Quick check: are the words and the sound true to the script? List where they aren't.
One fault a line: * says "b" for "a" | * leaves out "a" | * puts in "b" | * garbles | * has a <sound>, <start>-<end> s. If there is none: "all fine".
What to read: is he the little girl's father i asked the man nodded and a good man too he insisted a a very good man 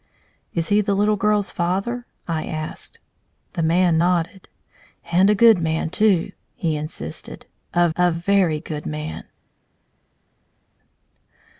all fine